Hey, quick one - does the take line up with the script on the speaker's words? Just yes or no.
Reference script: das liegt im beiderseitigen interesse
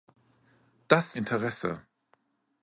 no